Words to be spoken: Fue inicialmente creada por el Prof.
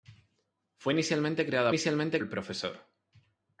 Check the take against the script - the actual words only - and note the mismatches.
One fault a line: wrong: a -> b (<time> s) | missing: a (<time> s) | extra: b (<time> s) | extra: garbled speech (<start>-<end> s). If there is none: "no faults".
wrong: por -> inicialmente (1.7 s)